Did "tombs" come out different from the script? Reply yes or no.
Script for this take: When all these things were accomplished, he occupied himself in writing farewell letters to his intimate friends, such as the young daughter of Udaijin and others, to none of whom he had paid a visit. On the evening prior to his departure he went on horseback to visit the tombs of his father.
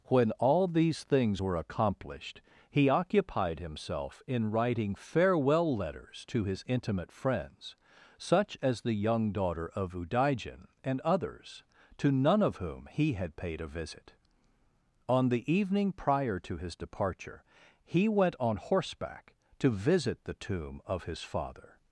yes